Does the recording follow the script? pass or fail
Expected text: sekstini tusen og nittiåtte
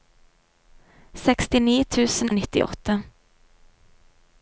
pass